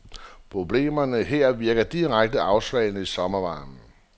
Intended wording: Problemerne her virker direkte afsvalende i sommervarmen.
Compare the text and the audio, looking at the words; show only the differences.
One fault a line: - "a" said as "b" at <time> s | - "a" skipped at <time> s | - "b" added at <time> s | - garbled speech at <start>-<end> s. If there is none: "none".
none